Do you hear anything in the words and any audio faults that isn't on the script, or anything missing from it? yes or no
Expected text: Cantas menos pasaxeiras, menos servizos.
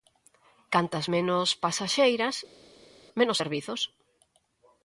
no